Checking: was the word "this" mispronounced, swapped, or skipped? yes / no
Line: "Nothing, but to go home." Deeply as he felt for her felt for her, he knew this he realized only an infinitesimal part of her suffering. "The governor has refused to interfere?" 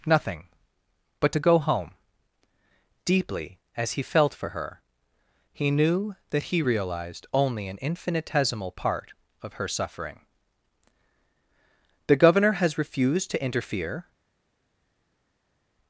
yes